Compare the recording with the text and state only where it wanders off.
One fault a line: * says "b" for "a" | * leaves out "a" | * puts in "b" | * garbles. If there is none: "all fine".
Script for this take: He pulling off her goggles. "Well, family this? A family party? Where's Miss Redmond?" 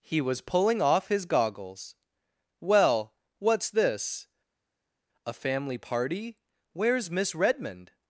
* puts in "was"
* says "his" for "her"
* says "what's" for "family"